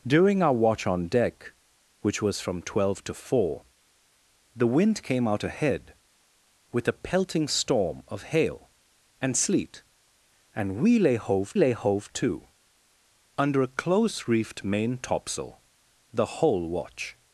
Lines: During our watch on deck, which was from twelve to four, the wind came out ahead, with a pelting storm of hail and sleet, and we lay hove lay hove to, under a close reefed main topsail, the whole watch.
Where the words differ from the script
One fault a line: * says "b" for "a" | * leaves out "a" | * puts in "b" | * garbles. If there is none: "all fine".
all fine